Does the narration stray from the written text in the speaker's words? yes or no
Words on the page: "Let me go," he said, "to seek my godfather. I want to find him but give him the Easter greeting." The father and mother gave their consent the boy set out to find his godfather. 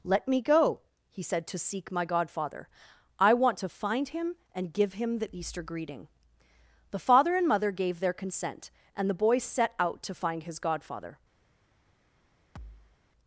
yes